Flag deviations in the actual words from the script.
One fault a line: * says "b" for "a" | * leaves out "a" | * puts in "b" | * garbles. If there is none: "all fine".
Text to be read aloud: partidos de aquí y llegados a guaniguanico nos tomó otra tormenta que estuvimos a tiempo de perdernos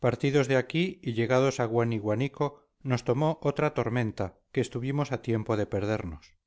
all fine